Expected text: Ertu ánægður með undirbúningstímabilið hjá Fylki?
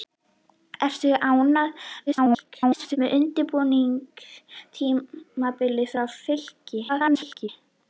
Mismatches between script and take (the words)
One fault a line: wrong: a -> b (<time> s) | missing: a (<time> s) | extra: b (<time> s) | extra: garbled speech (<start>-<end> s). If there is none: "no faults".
extra: garbled speech (2.1-3.0 s)
extra: garbled speech (6.9-7.5 s)